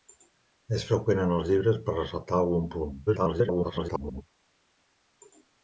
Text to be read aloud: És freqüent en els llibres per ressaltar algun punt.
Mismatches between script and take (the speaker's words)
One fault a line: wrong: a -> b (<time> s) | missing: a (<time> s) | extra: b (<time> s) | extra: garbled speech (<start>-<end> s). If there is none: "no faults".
extra: garbled speech (3.1-4.2 s)